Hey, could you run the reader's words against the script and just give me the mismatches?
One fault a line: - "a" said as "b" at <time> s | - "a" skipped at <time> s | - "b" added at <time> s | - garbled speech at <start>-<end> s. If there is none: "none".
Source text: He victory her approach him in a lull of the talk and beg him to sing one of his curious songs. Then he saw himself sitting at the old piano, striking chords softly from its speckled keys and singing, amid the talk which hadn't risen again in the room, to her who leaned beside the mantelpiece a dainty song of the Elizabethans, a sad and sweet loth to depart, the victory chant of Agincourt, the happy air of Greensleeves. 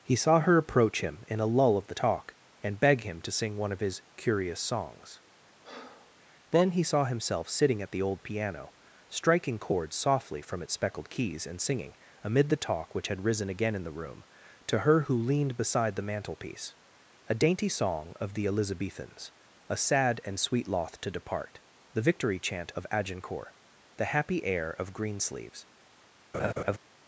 - "victory" said as "saw" at 0.1 s
- "hadn't" said as "had" at 13.1 s